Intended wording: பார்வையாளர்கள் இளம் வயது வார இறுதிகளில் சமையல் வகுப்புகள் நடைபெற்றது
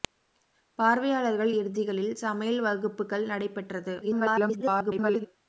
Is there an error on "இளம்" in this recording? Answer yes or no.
yes